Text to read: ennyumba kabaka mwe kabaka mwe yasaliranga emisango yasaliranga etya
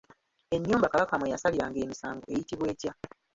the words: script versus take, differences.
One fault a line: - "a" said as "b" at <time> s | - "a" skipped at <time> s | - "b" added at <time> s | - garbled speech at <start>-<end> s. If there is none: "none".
- "kabaka mwe" skipped at 1.3 s
- "yasaliranga" said as "eyitibwa" at 2.3 s